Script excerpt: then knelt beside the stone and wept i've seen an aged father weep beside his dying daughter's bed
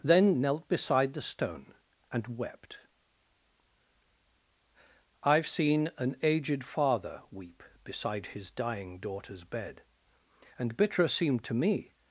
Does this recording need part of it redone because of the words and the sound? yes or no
yes